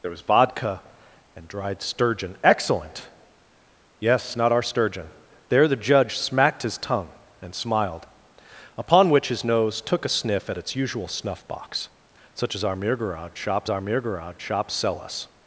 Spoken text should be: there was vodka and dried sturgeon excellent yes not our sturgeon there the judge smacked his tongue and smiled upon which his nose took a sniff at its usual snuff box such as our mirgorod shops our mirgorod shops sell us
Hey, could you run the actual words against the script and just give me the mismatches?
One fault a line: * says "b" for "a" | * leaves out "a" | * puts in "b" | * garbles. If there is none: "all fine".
all fine